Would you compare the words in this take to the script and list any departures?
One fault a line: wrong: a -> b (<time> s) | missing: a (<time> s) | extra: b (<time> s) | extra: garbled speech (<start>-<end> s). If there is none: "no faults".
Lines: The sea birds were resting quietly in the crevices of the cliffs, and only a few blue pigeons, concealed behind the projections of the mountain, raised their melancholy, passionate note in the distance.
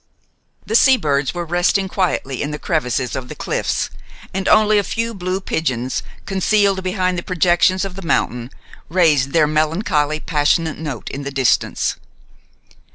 no faults